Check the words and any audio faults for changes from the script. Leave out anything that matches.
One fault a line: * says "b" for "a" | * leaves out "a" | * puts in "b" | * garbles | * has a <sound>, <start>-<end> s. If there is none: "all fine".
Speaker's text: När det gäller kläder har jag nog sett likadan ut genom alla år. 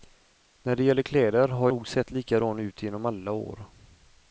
* leaves out "jag"